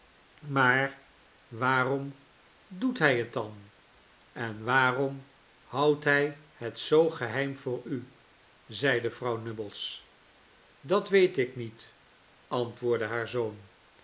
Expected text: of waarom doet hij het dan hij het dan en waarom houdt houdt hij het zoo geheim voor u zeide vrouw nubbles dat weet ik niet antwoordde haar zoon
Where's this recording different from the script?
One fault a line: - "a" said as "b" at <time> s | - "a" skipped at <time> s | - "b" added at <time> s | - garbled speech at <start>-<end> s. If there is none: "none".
- "of" said as "maar" at 0.5 s
- "hij het dan" skipped at 3.7 s
- "houdt" skipped at 6.0 s